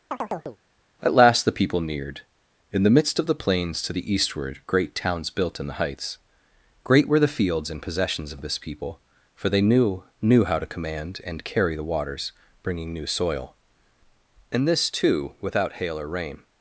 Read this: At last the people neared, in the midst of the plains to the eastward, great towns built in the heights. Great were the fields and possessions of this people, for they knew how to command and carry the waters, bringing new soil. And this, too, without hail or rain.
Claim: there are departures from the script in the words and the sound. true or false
true